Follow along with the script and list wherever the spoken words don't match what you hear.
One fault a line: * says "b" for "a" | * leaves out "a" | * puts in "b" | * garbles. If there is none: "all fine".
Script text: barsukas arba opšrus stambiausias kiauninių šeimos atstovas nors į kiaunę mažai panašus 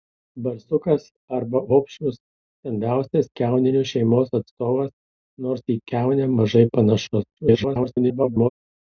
* garbles